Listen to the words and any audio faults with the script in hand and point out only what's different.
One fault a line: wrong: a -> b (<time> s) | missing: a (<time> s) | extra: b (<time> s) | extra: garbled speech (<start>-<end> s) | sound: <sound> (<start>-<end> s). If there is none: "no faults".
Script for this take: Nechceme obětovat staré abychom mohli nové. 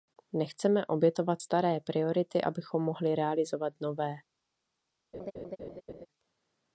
extra: priority (1.8 s)
extra: realizovat (3.2 s)
sound: laugh (5.1-6.1 s)